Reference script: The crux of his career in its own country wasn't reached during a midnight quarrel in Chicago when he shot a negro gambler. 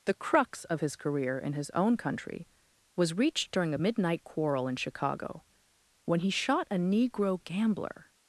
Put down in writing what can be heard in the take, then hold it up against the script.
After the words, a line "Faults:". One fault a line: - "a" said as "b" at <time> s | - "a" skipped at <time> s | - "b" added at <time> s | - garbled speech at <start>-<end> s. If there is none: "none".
The crux of his career in his own country was reached during a midnight quarrel in Chicago when he shot a negro gambler.
Faults:
- "its" said as "his" at 1.5 s
- "wasn't" said as "was" at 3.0 s